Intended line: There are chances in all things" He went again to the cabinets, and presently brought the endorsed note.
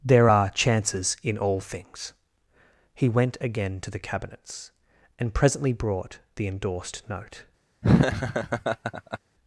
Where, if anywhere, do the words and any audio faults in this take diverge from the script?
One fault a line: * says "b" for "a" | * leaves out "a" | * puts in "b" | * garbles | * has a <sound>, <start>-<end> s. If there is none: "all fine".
* has a laugh, 7.8-9.2 s